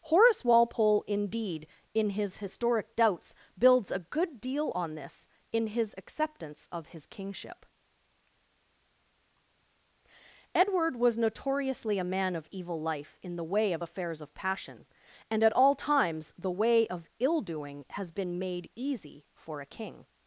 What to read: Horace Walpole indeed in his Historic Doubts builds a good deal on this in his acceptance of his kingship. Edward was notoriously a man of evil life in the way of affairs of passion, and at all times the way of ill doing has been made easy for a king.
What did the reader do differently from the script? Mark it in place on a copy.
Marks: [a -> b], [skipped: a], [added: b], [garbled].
Horace Walpole indeed in his Historic Doubts builds a good deal on this in his acceptance of his kingship. Edward was notoriously a man of evil life in the way of affairs of passion, and at all times the way of ill doing has been made easy for a king.